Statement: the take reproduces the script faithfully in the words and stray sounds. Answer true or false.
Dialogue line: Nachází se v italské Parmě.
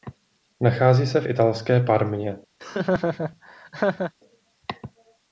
false